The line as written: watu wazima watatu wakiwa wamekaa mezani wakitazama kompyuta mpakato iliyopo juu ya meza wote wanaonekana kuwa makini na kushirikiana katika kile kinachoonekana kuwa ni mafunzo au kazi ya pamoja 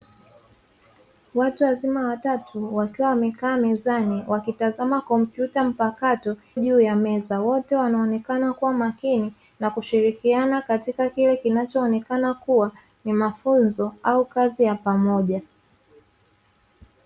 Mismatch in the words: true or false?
true